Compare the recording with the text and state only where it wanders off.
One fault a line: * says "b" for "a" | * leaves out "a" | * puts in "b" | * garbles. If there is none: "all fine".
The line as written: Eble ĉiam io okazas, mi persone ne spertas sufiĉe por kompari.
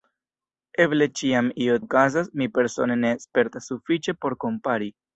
all fine